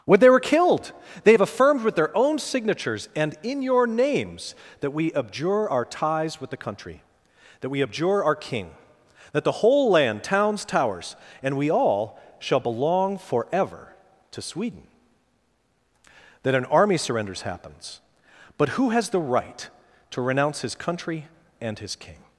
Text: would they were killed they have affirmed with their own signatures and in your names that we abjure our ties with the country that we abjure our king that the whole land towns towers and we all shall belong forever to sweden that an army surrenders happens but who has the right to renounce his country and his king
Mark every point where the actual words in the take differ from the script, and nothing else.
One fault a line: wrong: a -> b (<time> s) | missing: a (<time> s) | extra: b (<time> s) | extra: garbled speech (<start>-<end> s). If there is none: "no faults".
wrong: would -> when (0.1 s)